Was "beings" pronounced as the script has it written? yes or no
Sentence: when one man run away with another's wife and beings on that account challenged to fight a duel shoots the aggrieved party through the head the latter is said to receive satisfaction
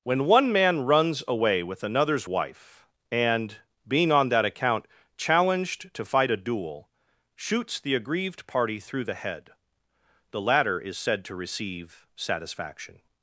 no